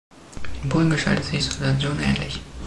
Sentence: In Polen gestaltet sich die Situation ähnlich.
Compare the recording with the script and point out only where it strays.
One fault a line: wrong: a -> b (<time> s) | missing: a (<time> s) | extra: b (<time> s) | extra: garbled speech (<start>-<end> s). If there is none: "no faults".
missing: die (1.4 s)